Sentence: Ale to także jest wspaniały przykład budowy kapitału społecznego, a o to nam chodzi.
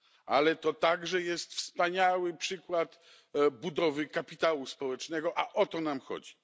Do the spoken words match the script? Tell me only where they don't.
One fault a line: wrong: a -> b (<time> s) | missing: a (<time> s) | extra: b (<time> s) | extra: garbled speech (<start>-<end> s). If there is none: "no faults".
no faults